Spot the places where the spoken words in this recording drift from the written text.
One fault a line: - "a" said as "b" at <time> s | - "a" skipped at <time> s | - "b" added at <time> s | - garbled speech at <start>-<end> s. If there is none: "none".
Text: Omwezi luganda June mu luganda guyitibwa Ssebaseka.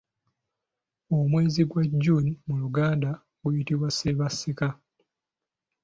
- "luganda" said as "gwa" at 1.7 s